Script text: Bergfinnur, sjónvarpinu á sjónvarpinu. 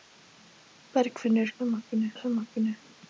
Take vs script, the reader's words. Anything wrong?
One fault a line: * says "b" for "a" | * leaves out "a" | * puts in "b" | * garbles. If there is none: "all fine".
all fine